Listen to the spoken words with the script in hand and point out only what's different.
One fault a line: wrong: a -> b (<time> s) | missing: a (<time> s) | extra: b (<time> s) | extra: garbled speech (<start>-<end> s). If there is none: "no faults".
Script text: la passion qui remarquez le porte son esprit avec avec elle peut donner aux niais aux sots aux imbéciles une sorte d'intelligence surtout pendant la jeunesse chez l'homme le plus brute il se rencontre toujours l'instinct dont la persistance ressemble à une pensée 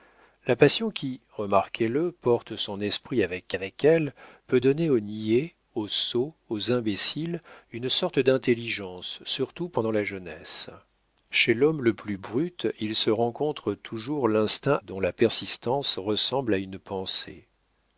no faults